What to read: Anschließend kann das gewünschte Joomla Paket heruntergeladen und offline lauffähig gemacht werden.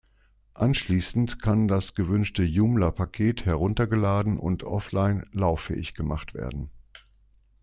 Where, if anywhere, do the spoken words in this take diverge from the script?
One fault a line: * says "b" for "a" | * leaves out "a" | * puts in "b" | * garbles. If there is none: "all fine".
all fine